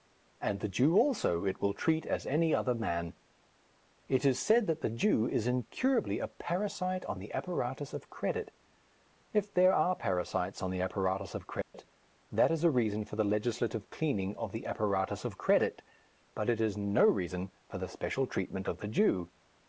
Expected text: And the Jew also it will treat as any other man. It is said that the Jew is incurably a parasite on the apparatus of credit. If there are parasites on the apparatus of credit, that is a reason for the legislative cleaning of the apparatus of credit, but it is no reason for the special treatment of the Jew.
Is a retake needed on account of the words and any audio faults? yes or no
yes